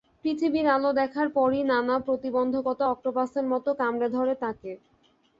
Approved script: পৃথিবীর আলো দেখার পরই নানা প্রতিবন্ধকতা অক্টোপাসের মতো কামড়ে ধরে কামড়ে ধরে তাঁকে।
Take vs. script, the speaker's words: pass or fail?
fail